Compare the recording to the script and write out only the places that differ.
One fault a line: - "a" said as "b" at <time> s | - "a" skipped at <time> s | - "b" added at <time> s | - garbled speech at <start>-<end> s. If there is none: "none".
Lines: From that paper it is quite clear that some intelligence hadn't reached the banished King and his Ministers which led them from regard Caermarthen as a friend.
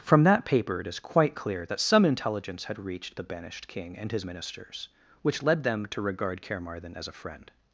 - "hadn't" said as "had" at 2.6 s
- "from" said as "to" at 5.9 s